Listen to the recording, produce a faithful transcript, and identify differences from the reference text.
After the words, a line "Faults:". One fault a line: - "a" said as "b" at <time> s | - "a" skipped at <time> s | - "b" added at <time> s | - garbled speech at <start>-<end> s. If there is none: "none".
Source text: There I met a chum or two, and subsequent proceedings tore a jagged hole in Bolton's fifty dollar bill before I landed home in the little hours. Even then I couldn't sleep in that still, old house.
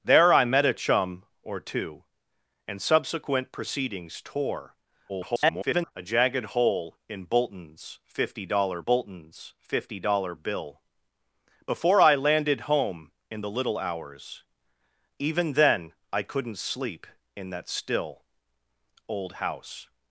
There I met a chum or two, and subsequent proceedings tore [garbled] a jagged hole in Bolton's fifty dollar Bolton's fifty dollar bill before I landed home in the little hours. Even then I couldn't sleep in that still, old house.
Faults:
- garbled speech at 5.1-5.9 s
- "Bolton's fifty dollar" added at 8.8 s